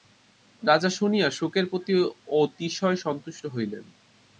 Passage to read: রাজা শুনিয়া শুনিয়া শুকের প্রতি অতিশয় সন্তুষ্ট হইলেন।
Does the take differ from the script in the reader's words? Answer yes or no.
yes